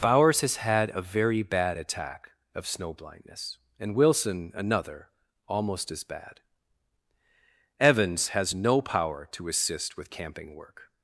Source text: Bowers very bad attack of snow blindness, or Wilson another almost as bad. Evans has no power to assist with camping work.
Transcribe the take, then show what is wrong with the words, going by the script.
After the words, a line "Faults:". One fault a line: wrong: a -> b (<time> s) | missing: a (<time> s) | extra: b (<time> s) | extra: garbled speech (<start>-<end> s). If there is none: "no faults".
Bowers has had a very bad attack of snow blindness, and Wilson another almost as bad. Evans has no power to assist with camping work.
Faults:
extra: has had a (0.4 s)
wrong: or -> and (3.8 s)